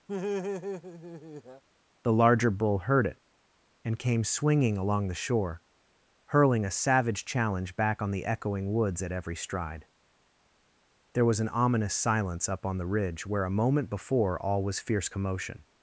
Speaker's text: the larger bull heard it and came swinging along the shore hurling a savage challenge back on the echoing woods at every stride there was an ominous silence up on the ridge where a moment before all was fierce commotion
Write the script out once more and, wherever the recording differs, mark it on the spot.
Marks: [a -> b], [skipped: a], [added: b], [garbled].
the larger bull heard it and came swinging along the shore hurling a savage challenge back on the echoing woods at every stride there was an ominous silence up on the ridge where a moment before all was fierce commotion